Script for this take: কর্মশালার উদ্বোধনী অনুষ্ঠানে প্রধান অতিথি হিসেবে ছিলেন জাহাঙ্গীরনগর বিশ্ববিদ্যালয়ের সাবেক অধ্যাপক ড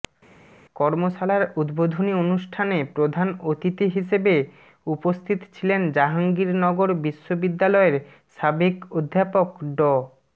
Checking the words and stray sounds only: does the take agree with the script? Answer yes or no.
no